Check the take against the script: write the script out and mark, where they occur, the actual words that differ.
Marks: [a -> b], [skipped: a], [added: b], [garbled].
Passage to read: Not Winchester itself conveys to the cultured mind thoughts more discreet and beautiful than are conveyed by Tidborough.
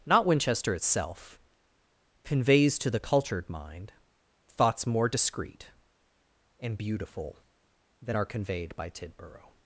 Not Winchester itself conveys to the cultured mind thoughts more discreet and beautiful than are conveyed by Tidborough.